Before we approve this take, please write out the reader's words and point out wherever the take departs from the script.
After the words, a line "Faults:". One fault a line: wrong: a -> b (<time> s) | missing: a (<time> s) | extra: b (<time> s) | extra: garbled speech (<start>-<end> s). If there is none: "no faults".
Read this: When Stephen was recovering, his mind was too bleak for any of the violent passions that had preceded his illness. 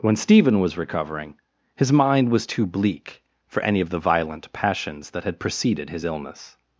When Stephen was recovering, his mind was too bleak for any of the violent passions that had preceded his illness.
Faults:
no faults